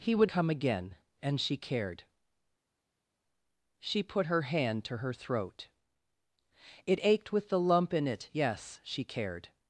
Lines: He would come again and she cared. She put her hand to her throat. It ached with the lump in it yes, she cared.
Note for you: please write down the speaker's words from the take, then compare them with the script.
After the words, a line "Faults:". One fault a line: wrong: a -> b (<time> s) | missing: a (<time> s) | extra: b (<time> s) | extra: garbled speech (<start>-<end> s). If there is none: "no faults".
He would come again and she cared. She put her hand to her throat. It ached with the lump in it yes, she cared.
Faults:
no faults